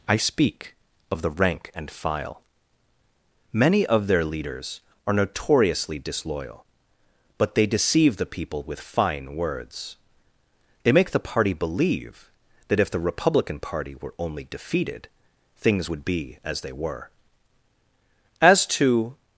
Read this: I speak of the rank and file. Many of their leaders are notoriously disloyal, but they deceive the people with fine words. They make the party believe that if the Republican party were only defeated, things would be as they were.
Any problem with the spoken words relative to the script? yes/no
yes